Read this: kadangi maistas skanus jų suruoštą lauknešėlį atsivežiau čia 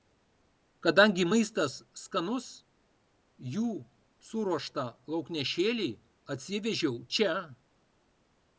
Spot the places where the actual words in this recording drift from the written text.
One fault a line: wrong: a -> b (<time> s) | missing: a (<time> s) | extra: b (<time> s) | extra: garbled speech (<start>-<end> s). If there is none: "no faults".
no faults